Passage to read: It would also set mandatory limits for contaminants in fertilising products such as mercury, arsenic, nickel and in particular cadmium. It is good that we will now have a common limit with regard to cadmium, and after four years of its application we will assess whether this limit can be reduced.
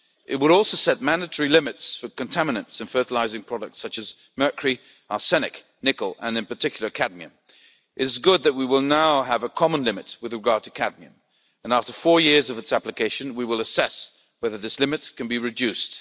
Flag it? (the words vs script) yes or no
no